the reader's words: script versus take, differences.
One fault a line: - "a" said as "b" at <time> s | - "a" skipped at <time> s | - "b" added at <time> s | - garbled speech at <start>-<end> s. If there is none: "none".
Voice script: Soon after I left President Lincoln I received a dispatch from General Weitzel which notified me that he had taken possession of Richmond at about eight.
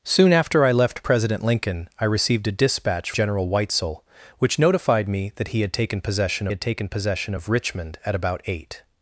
- "from" skipped at 3.1 s
- "had taken possession" added at 6.5 s